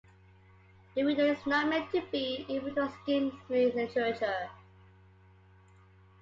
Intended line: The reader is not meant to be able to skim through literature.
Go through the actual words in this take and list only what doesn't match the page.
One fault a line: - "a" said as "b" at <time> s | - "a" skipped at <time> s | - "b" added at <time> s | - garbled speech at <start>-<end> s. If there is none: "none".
none